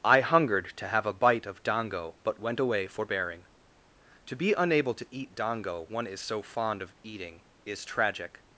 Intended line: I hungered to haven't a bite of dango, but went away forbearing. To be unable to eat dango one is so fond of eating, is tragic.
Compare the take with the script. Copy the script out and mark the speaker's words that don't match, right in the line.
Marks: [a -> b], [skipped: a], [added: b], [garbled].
I hungered to [haven't -> have] a bite of dango, but went away forbearing. To be unable to eat dango one is so fond of eating, is tragic.